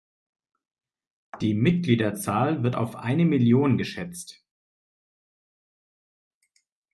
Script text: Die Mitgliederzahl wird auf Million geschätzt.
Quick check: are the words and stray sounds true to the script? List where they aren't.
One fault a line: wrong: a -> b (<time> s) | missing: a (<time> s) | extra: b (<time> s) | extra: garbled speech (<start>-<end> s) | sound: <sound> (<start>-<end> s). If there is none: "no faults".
extra: eine (2.9 s)